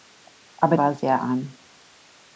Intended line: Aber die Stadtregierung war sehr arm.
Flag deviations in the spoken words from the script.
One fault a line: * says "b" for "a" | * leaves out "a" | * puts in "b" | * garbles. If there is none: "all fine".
* leaves out "die Stadtregierung"